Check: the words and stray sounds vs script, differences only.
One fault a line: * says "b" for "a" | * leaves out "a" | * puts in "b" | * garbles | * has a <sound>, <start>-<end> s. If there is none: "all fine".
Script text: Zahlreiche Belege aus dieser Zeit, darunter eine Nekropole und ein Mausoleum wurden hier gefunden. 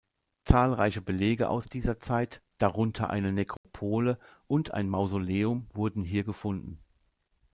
* has a dropout, 3.6-3.6 s